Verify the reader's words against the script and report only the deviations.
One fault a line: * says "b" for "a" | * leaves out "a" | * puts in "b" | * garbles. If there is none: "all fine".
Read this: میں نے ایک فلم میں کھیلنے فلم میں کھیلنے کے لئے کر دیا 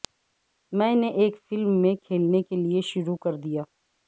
* leaves out "فلم میں کھیلنے"
* puts in "شروع"